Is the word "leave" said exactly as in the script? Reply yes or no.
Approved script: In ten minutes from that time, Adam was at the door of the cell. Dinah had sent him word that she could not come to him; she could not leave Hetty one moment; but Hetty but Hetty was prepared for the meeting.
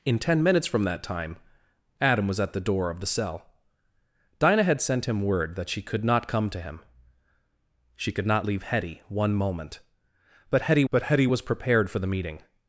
yes